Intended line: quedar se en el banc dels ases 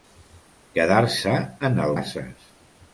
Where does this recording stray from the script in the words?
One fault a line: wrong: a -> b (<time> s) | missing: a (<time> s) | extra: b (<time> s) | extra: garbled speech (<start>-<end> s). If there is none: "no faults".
missing: banc dels (1.9 s)